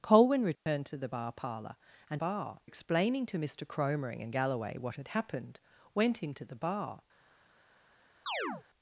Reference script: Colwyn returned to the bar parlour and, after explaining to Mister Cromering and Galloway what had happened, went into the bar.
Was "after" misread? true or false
true